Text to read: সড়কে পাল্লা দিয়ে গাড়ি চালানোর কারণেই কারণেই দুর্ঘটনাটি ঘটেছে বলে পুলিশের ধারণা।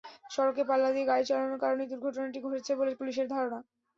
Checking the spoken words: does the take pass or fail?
fail